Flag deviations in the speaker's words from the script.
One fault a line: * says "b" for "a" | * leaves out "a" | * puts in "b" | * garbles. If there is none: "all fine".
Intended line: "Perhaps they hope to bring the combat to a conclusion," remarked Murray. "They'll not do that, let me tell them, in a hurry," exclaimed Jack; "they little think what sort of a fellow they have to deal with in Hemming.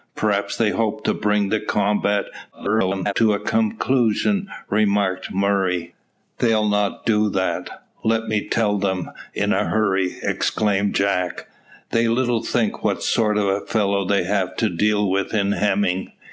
* garbles